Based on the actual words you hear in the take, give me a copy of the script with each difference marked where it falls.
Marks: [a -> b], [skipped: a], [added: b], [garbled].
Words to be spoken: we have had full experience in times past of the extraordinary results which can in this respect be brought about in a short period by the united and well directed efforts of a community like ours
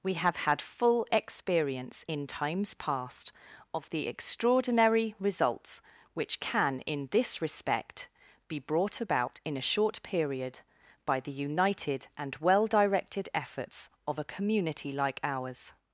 we have had full experience in times past of the extraordinary results which can in this respect be brought about in a short period by the united and well directed efforts of a community like ours